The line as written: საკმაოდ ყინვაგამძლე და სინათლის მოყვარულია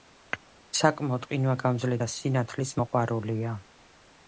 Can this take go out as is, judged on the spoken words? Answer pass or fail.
pass